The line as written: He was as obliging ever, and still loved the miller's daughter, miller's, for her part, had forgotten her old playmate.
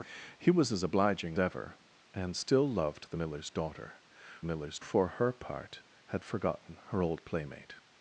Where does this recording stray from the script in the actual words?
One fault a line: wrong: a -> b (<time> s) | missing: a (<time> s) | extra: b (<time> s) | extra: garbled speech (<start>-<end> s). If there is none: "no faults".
no faults